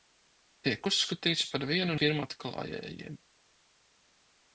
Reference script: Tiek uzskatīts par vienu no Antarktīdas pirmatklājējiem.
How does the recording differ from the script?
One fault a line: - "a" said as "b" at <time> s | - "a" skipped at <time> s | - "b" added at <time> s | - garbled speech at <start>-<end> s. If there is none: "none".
- "no Antarktīdas" skipped at 2.0 s